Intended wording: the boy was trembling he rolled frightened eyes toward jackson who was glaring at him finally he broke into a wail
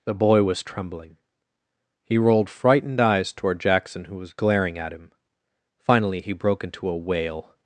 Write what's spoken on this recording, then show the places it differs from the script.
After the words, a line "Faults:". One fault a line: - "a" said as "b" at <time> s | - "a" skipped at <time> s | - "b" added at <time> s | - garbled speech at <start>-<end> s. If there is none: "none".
the boy was trembling he rolled frightened eyes toward jackson who was glaring at him finally he broke into a wail
Faults:
none